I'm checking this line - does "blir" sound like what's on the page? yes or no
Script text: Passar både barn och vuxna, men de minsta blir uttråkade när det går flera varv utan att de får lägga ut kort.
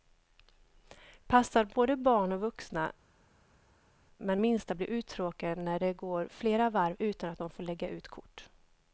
yes